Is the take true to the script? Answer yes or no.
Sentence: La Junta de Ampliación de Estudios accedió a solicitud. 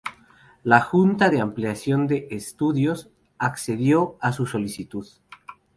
no